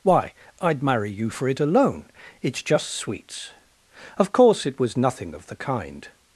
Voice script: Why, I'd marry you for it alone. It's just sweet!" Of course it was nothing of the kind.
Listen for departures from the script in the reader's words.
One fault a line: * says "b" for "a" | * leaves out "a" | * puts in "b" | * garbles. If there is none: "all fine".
* says "sweets" for "sweet"